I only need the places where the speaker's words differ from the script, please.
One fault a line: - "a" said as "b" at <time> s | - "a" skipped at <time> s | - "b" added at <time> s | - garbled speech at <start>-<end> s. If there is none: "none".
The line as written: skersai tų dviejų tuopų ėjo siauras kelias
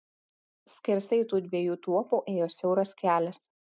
none